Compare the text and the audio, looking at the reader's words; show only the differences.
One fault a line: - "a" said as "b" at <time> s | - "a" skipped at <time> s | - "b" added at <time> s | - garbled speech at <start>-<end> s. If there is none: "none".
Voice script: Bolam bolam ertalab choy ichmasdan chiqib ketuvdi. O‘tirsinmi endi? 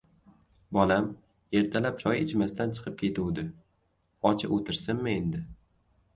- "bolam" skipped at 1.1 s
- "Och" added at 4.3 s